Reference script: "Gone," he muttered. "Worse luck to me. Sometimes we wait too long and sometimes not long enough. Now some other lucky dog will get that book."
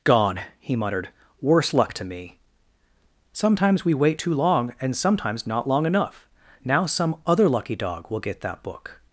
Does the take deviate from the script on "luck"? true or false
false